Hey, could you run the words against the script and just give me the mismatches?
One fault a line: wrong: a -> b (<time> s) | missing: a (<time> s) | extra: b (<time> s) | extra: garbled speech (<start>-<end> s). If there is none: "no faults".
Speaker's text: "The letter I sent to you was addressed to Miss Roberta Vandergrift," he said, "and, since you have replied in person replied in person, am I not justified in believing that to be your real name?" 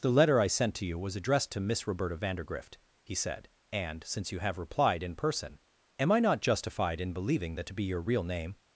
missing: replied in person (5.6 s)